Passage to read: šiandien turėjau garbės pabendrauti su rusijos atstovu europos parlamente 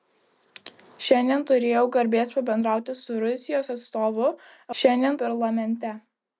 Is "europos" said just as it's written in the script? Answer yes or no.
no